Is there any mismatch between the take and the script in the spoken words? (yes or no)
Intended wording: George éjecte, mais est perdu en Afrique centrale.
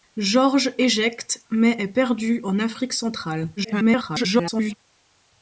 yes